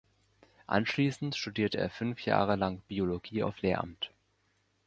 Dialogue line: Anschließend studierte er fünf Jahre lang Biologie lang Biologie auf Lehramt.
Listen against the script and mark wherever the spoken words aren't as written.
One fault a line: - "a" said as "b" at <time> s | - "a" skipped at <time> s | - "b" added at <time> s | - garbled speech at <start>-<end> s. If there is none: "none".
- "lang Biologie" skipped at 3.4 s